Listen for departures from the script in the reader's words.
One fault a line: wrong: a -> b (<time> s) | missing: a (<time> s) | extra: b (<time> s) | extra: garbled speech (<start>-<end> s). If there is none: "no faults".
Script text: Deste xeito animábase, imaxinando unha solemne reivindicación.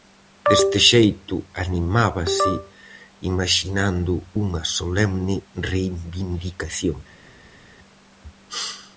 no faults